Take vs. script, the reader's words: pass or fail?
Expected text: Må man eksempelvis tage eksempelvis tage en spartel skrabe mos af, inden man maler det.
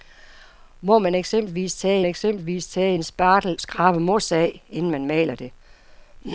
pass